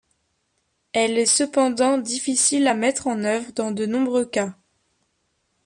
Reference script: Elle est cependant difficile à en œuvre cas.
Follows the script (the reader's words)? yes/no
no